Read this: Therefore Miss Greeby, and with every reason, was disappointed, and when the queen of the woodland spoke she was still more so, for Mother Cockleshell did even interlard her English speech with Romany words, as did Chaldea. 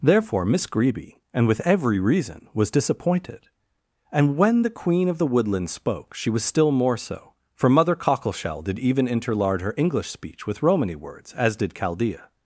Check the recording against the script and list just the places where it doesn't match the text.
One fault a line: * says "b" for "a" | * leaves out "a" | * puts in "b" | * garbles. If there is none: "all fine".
all fine